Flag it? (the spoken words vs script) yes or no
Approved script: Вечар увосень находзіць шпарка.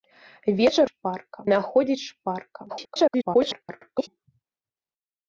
yes